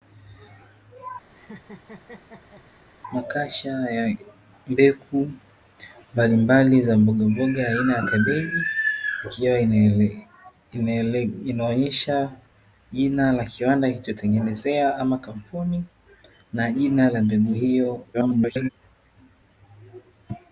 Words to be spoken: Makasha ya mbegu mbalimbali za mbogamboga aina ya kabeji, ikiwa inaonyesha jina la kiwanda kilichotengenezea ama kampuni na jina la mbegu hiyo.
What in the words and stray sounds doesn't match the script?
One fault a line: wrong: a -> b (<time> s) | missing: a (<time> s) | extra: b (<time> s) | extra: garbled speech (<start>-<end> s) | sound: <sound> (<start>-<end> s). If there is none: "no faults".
sound: laugh (1.3-2.7 s)
extra: garbled speech (18.1-18.7 s)